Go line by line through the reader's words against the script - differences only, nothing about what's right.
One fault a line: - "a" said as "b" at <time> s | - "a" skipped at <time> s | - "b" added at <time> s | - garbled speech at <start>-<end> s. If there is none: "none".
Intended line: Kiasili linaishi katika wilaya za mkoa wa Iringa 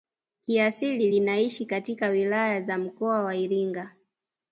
none